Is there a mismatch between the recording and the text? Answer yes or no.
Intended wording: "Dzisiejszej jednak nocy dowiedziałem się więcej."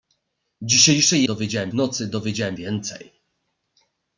yes